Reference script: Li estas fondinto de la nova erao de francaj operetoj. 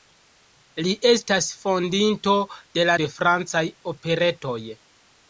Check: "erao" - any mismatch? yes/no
yes